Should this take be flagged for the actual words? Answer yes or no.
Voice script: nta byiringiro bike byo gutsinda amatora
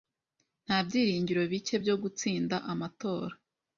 no